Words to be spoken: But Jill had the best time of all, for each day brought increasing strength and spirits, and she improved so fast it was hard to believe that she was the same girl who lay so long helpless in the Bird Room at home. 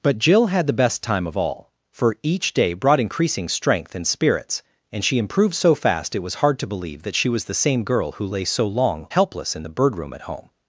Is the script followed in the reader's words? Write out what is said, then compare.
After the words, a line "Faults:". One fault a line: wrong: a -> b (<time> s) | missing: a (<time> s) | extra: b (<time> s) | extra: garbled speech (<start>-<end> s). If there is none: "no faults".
But Jill had the best time of all, for each day brought increasing strength and spirits, and she improved so fast it was hard to believe that she was the same girl who lay so long helpless in the Bird Room at home.
Faults:
no faults